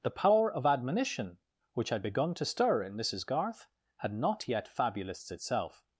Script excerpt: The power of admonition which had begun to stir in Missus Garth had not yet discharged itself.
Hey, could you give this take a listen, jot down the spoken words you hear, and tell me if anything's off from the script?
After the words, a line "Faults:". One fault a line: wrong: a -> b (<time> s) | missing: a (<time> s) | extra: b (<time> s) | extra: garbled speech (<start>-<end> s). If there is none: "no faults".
The power of admonition which had begun to stir in Missus Garth had not yet fabulists itself.
Faults:
wrong: discharged -> fabulists (4.7 s)